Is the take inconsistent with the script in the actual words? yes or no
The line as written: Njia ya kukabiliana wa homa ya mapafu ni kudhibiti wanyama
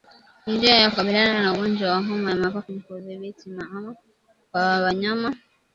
yes